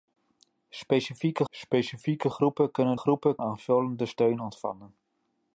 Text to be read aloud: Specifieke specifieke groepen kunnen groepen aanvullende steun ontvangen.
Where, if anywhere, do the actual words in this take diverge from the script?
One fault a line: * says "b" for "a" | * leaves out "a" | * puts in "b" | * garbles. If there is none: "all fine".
all fine